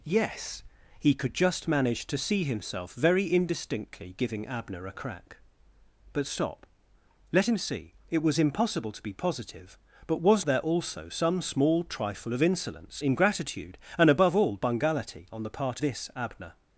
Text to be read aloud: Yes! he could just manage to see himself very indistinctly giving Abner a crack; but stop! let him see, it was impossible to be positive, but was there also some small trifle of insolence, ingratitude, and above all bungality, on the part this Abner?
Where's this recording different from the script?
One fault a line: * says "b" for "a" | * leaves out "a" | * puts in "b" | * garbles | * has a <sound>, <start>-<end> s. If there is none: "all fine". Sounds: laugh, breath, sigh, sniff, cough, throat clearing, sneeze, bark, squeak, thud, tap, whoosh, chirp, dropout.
all fine